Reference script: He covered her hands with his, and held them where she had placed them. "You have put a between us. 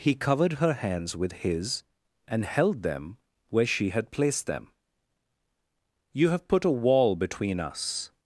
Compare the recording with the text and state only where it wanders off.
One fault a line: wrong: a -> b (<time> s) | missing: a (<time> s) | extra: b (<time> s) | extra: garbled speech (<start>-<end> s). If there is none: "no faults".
extra: wall (6.7 s)